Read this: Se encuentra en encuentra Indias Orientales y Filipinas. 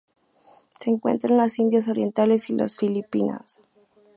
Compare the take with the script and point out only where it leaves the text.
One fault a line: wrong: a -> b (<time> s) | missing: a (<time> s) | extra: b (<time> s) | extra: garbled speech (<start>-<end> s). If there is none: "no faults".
wrong: encuentra -> las (1.4 s)
extra: las (2.5 s)